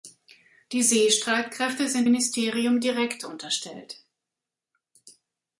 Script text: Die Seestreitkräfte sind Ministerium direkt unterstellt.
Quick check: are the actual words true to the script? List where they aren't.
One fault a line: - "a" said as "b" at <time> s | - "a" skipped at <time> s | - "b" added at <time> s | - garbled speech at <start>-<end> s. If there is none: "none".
none